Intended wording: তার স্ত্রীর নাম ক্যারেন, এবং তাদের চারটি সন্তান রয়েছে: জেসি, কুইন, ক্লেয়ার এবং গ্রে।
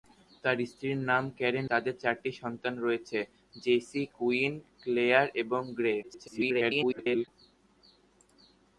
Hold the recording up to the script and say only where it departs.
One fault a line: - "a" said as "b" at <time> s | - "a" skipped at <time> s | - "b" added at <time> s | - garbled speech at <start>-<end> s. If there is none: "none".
- "এবং" skipped at 1.6 s
- garbled speech at 6.0-7.3 s